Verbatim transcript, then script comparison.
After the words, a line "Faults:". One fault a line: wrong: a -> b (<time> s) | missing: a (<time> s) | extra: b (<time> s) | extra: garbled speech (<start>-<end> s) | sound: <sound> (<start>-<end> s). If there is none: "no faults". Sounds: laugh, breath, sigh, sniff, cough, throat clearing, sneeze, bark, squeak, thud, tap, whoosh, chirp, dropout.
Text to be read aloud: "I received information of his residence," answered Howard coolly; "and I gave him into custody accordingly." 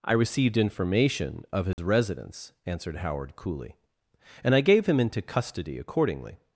"I received information of his residence," answered Howard coolly; "and I gave him into custody accordingly."
Faults:
sound: dropout (1.7-1.8 s)